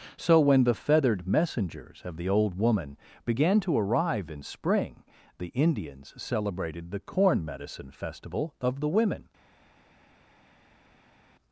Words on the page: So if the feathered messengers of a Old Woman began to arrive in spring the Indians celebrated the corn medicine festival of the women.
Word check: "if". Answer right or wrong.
wrong